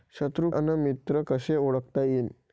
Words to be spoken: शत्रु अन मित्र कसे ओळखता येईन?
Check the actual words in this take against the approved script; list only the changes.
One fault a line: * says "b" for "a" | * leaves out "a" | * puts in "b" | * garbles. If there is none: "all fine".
all fine